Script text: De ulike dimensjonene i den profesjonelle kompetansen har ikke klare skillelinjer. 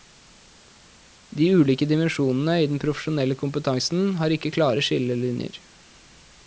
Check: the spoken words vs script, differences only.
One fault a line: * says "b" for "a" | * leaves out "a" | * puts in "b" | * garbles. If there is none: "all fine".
all fine